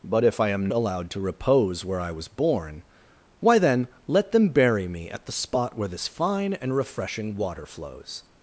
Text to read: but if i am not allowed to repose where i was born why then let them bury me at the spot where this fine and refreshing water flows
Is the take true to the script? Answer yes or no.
no